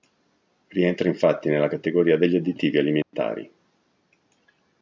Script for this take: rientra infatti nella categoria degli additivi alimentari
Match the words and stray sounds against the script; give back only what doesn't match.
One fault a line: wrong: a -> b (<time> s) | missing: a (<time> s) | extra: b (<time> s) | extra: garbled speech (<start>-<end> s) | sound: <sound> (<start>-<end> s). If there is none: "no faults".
sound: dropout (3.0-3.1 s)